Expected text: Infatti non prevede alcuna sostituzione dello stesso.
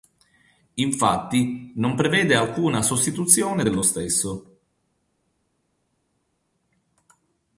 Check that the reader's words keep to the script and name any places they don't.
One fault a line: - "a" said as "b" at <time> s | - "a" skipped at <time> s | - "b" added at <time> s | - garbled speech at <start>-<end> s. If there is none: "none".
none